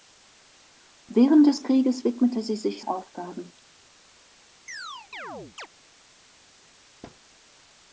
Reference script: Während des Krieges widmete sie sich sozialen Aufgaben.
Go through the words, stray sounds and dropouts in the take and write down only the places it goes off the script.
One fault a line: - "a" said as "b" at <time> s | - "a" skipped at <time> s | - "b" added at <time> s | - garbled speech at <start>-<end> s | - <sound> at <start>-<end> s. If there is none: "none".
- "sozialen" skipped at 2.9 s
- chirp at 4.7-5.7 s
- thud at 7.0-7.2 s